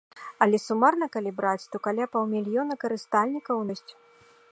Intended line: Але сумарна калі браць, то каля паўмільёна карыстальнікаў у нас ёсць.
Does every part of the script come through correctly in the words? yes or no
no